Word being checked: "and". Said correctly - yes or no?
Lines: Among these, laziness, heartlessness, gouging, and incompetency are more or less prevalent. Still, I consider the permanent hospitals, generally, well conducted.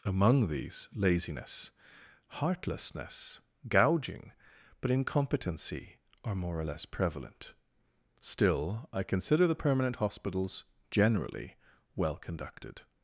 no